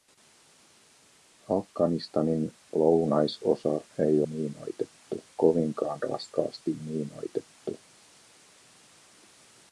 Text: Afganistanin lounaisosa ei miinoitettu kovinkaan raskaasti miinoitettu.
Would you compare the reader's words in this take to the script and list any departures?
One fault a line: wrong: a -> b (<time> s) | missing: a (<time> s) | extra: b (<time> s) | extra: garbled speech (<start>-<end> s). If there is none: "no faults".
no faults